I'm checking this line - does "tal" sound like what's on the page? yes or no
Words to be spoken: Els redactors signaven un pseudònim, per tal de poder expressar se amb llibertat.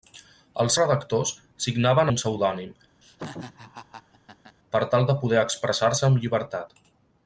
yes